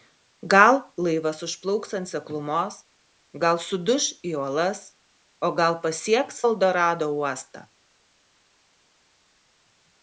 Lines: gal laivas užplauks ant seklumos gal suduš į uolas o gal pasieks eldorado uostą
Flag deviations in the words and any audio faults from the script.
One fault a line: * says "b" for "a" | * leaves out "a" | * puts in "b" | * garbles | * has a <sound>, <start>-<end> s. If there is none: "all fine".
all fine